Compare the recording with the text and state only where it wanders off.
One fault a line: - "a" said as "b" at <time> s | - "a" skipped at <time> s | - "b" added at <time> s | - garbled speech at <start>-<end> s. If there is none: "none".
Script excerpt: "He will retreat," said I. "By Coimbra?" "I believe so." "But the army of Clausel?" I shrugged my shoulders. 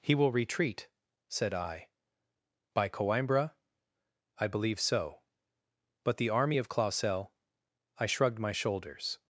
none